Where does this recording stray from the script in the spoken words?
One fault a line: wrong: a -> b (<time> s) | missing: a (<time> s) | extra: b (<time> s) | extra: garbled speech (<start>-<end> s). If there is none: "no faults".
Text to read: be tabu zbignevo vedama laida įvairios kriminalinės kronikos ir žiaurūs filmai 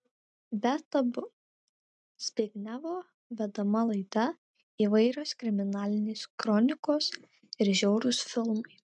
no faults